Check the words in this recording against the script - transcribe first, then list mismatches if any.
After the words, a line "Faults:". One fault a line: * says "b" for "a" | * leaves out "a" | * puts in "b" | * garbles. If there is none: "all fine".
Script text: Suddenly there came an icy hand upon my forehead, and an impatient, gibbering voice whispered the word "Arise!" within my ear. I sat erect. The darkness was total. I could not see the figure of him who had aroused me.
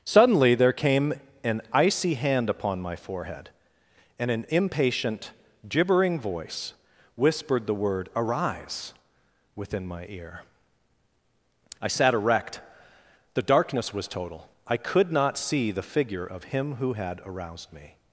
Suddenly there came an icy hand upon my forehead, and an impatient, gibbering voice whispered the word "Arise!" within my ear. I sat erect. The darkness was total. I could not see the figure of him who had aroused me.
Faults:
all fine